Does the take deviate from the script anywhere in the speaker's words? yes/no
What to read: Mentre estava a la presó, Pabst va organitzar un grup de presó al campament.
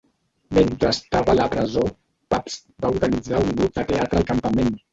yes